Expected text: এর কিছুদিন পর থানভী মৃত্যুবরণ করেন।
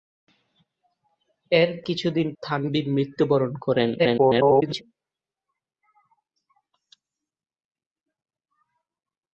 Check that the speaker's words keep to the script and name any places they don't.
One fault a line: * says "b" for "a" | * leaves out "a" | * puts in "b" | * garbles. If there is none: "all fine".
* leaves out "পর"
* garbles